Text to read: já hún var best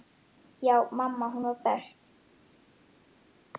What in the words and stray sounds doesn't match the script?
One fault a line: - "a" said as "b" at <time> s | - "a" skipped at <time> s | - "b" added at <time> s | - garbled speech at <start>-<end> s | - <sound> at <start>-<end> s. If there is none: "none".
- "mamma" added at 0.9 s